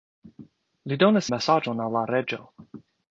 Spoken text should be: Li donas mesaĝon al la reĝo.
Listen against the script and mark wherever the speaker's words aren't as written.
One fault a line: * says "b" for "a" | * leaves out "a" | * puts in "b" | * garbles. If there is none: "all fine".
all fine